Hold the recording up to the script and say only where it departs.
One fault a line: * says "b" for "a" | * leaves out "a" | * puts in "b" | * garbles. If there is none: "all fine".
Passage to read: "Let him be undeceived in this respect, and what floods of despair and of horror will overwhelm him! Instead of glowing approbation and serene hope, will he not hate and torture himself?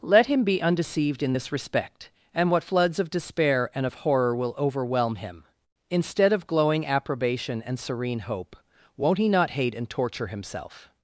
* says "won't" for "will"